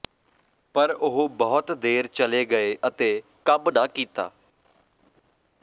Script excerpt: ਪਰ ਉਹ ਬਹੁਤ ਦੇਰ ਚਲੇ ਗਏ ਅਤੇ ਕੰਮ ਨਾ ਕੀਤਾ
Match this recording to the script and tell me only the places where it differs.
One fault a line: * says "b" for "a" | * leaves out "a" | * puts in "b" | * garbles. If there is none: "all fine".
all fine